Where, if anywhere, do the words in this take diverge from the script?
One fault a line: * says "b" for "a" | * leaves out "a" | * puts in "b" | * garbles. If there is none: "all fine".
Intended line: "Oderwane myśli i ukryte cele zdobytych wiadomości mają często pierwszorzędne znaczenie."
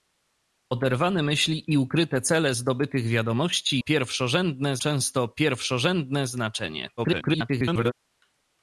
* says "pierwszorzędne" for "mają"
* garbles